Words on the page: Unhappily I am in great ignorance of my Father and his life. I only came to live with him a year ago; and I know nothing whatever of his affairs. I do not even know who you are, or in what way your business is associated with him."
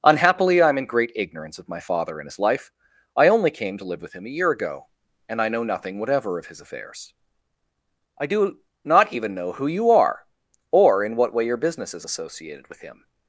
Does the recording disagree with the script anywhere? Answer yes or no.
no